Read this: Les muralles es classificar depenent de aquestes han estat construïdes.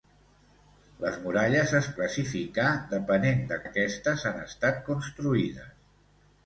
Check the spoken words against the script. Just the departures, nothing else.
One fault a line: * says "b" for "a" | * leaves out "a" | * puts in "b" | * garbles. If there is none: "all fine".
all fine